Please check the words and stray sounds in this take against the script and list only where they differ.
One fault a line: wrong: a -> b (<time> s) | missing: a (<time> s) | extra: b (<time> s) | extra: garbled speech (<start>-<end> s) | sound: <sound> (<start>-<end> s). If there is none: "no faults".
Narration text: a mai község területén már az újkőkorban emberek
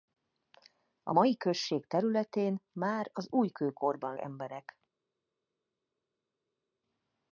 no faults